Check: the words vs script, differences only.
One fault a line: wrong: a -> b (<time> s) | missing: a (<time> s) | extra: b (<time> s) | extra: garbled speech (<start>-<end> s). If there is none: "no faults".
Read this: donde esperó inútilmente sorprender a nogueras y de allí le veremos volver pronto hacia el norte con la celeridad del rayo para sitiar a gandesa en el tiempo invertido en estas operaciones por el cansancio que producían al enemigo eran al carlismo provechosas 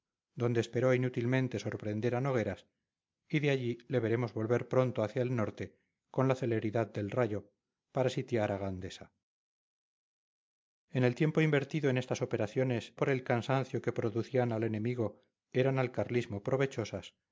no faults